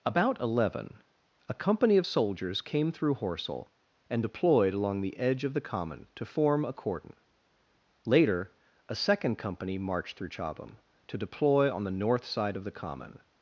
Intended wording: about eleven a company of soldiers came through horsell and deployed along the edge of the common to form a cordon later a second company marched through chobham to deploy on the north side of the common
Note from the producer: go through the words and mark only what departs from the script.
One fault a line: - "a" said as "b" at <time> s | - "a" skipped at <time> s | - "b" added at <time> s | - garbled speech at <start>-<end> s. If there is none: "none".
none